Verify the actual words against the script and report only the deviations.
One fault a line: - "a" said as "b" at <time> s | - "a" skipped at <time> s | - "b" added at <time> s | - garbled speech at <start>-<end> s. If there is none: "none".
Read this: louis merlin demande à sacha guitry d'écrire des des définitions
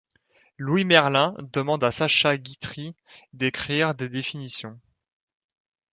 - "des" skipped at 4.1 s